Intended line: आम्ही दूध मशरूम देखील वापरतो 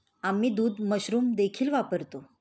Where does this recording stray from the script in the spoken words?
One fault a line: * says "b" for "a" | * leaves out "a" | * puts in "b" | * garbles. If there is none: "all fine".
all fine